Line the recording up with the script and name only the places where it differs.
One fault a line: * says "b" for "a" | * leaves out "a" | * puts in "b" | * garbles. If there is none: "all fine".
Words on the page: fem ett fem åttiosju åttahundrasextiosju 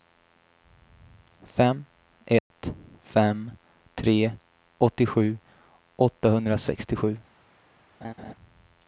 * puts in "tre"